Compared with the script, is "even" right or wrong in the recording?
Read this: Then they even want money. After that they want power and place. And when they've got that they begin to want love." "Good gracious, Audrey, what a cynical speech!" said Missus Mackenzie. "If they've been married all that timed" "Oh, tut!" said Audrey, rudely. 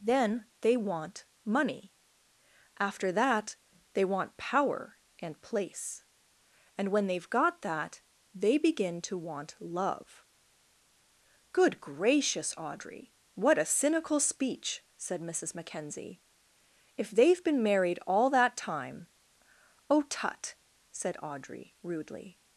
wrong